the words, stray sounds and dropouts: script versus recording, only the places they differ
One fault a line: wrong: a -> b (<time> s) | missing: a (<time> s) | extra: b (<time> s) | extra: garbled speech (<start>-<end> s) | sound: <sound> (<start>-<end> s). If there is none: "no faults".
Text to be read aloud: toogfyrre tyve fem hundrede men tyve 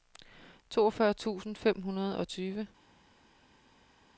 wrong: tyve -> tusind (1.1 s)
wrong: men -> og (2.2 s)